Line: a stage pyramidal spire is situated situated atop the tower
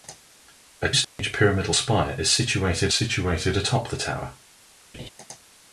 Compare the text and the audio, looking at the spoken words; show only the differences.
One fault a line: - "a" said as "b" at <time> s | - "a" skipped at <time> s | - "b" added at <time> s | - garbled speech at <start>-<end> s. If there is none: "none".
none